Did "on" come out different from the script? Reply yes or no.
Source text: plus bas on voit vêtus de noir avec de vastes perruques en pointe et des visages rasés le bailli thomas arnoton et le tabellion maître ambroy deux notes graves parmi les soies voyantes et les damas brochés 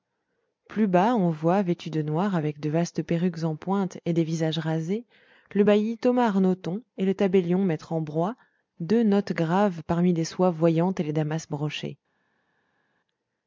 no